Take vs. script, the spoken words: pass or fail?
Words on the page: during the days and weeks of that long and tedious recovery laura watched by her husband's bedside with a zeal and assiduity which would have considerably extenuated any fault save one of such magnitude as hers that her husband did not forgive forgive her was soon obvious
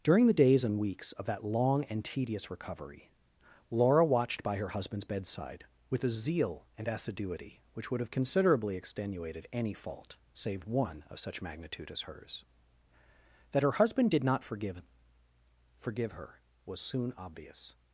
pass